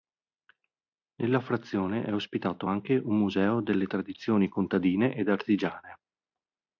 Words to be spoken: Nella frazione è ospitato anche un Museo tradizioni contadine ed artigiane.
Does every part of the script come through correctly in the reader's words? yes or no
no